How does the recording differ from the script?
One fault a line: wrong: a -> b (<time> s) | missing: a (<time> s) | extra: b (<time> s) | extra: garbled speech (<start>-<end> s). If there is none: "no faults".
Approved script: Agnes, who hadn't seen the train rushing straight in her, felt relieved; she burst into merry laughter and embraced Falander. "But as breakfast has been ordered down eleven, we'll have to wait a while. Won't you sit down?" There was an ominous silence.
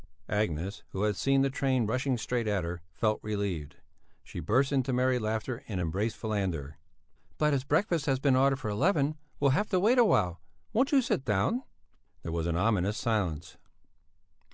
wrong: hadn't -> had (1.0 s)
wrong: in -> at (2.5 s)
wrong: down -> for (8.6 s)